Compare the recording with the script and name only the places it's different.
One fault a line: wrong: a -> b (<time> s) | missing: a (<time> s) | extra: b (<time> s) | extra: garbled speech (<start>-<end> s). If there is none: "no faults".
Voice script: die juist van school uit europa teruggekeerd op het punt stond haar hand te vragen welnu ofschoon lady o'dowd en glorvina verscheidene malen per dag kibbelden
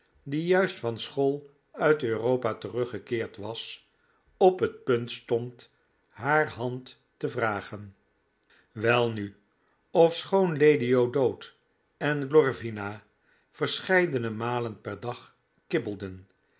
extra: was (3.4 s)